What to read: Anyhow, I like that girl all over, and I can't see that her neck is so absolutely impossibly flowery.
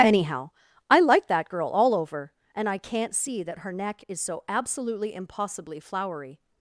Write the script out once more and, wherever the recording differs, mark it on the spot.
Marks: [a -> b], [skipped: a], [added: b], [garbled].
Anyhow, I like that girl all over, and I can't see that her neck is so absolutely impossibly flowery.